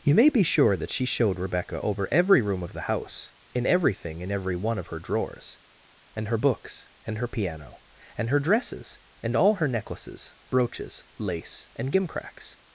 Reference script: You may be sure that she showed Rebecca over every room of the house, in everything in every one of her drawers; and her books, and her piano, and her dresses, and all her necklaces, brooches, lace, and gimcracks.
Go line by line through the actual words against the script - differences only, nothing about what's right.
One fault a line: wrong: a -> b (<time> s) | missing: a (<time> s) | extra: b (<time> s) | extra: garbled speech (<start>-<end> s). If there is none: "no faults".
no faults